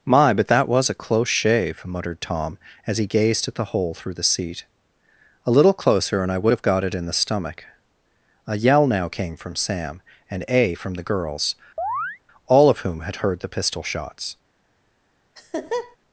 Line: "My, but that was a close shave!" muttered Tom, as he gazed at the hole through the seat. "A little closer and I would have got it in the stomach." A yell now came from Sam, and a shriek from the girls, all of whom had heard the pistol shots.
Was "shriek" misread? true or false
true